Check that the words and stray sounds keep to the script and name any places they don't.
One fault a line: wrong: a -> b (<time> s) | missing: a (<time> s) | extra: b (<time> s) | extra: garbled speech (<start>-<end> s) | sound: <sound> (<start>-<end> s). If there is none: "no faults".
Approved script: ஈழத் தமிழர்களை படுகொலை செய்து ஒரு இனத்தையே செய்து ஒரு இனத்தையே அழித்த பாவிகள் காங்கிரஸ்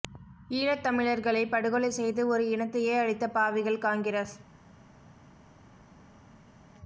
missing: செய்து ஒரு இனத்தையே (3.0 s)